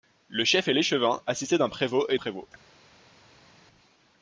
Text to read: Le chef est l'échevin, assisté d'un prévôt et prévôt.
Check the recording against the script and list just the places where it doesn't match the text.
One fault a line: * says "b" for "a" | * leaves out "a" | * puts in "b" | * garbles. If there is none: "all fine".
all fine